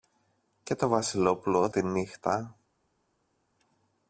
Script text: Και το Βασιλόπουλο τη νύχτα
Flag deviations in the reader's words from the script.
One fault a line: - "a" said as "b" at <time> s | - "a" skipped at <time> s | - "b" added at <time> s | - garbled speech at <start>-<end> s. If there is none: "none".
none